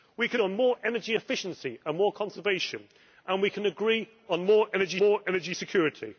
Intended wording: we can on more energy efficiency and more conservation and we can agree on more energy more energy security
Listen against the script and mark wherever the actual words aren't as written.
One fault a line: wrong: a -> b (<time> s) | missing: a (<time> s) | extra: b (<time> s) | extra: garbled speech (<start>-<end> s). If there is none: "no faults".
no faults